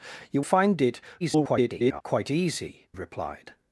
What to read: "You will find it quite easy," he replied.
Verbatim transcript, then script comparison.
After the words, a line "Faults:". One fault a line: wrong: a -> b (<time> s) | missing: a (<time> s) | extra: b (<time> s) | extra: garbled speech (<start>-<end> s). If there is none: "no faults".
"You find it [garbled] quite easy," replied.
Faults:
missing: will (0.4 s)
extra: garbled speech (1.2-2.0 s)
missing: he (2.9 s)